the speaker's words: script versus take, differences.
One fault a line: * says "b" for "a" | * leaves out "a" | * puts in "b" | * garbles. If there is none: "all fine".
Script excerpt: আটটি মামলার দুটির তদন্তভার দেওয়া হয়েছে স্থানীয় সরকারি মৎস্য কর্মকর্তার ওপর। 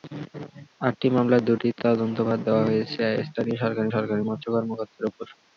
* puts in "সরকারি"